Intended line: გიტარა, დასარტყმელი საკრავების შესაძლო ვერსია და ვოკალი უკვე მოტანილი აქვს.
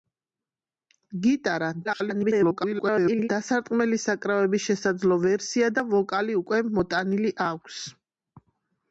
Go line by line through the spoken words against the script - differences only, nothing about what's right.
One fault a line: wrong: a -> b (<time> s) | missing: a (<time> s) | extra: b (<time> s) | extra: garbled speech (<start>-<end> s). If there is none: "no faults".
extra: garbled speech (1.8-3.3 s)